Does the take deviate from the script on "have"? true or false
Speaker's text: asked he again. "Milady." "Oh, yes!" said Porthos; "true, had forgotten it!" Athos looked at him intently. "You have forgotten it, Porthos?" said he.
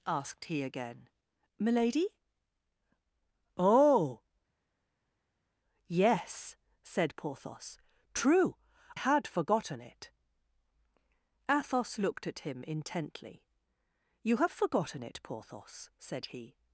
false